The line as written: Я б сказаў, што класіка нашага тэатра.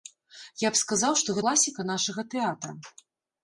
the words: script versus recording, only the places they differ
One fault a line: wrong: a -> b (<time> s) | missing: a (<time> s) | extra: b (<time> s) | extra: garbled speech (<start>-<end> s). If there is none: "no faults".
no faults